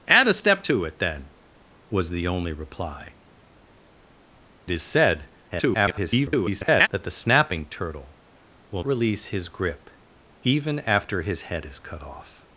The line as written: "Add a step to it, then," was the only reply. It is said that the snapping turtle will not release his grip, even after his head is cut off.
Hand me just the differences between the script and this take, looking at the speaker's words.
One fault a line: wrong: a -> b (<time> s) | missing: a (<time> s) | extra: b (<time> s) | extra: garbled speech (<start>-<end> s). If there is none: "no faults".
missing: It (3.1 s)
extra: garbled speech (5.5-6.9 s)
missing: not (8.8 s)